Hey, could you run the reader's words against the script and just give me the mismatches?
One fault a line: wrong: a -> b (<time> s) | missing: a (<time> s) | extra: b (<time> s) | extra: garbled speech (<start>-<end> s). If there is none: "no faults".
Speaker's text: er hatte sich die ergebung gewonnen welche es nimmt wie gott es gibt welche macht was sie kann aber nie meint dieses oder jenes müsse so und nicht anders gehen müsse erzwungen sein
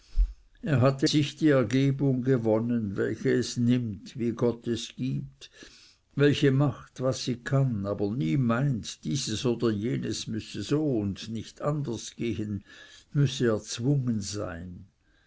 no faults